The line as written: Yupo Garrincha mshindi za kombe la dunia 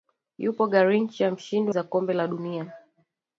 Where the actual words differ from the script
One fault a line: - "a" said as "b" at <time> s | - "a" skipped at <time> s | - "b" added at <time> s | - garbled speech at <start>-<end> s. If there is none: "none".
none